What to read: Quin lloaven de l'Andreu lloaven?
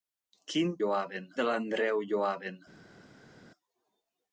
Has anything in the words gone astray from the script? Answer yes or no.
no